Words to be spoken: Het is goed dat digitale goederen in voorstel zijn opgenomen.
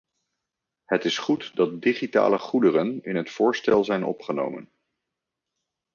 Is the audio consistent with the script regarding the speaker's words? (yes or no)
no